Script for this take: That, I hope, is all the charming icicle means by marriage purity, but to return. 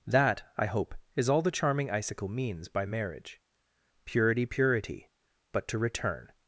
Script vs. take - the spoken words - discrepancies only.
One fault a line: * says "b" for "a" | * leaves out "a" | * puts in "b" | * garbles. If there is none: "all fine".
* puts in "purity"